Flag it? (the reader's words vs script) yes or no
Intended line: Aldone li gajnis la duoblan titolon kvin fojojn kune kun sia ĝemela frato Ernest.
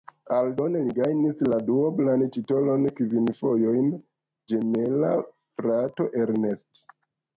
yes